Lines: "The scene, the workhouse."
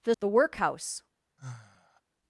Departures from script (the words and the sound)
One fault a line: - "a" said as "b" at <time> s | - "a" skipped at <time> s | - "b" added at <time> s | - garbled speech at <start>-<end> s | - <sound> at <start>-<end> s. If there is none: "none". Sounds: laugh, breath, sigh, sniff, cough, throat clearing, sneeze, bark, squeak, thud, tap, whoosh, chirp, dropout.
- "scene" skipped at 0.1 s
- sigh at 1.4-2.0 s